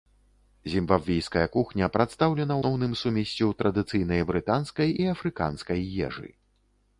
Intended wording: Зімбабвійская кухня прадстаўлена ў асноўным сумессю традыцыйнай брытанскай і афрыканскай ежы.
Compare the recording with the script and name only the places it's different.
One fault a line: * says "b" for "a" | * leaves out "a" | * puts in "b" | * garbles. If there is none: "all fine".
* leaves out "ў"